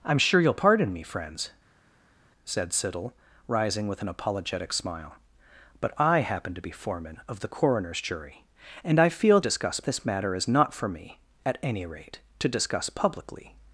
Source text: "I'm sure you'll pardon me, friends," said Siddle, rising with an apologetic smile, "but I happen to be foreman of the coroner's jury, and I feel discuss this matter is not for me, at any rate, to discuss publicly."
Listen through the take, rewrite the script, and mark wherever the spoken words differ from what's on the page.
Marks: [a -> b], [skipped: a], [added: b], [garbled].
"I'm sure you'll pardon me, friends," said Siddle, rising with an apologetic smile, "but I happen to be foreman of the coroner's jury, and I feel discuss this matter is not for me, at any rate, to discuss publicly."